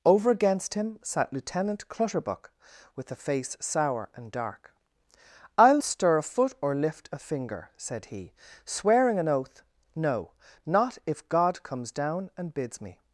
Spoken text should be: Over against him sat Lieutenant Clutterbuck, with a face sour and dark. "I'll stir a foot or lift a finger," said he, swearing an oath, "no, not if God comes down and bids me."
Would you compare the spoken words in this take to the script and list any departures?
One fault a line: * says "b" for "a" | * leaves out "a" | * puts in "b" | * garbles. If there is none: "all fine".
all fine